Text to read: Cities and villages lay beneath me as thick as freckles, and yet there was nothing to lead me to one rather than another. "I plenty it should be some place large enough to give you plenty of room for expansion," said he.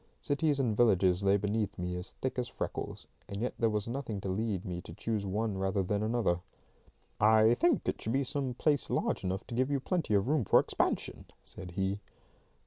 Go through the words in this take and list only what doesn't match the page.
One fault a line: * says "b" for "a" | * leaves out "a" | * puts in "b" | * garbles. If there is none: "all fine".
* puts in "choose"
* says "think" for "plenty"